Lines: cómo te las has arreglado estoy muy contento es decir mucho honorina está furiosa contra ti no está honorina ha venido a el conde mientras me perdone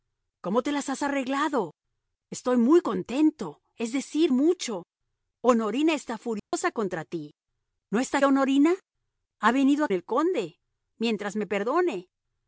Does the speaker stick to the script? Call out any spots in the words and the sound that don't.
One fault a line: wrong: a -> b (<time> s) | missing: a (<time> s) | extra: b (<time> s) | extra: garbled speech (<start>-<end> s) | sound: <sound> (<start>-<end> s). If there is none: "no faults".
sound: dropout (6.4-6.5 s)